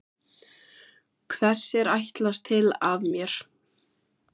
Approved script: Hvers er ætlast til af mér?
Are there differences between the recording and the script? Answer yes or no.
no